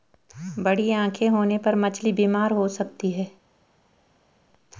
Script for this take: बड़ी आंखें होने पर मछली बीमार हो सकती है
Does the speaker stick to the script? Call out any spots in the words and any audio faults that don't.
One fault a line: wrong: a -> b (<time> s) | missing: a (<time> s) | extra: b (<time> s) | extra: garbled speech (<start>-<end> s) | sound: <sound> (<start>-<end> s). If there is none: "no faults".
no faults